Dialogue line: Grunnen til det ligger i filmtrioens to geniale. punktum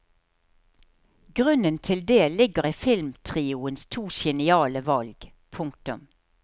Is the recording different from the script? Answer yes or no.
yes